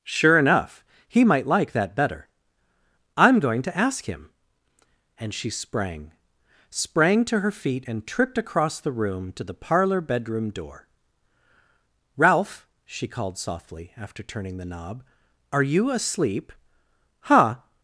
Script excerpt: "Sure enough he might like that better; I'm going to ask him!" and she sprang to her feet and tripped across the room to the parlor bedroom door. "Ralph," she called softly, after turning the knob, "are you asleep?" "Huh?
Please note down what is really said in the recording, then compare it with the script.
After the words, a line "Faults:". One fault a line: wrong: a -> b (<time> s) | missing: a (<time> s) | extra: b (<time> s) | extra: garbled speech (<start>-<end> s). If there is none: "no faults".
"Sure enough he might like that better; I'm going to ask him!" and she sprang sprang to her feet and tripped across the room to the parlor bedroom door. "Ralph," she called softly, after turning the knob, "are you asleep?" "Huh?
Faults:
extra: sprang (6.7 s)